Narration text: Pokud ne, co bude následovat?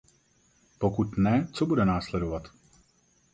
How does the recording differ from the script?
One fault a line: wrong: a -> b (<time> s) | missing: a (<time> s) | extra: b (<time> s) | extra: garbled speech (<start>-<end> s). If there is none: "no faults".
no faults